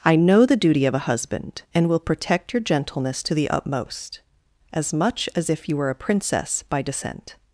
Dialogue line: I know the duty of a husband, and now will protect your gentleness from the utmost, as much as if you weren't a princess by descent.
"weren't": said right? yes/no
no